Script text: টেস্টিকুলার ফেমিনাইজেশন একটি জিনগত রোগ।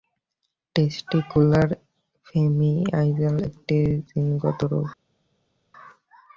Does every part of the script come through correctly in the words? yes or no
yes